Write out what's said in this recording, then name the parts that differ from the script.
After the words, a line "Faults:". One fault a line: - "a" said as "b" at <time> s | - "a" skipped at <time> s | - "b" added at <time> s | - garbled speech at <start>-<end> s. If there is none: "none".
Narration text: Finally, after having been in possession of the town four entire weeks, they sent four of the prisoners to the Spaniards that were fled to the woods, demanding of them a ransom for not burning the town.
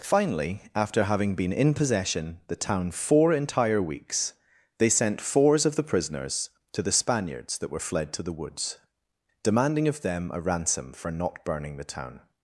Finally, after having been in possession the town four entire weeks, they sent fours of the prisoners to the Spaniards that were fled to the woods, demanding of them a ransom for not burning the town.
Faults:
- "of" skipped at 2.4 s
- "four" said as "fours" at 5.2 s